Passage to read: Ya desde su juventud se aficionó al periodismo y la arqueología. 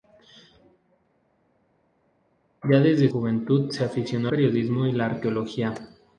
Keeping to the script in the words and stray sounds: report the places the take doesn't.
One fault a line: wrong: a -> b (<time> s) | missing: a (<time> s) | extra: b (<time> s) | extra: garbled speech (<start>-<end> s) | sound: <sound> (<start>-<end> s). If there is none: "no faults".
missing: su (3.1 s)
missing: al (4.3 s)